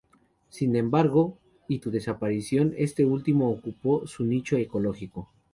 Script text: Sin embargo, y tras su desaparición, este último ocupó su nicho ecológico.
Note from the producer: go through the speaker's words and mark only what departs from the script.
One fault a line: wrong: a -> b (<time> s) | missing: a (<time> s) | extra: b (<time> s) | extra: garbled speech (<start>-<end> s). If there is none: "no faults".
missing: tras (1.8 s)